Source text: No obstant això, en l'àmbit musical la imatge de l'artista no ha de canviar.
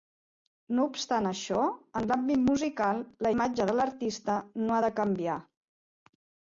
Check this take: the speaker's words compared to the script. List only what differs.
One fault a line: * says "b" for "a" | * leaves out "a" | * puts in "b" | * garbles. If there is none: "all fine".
all fine